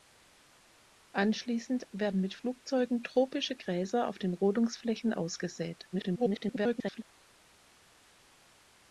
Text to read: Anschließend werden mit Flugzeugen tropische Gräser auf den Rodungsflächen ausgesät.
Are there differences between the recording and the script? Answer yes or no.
yes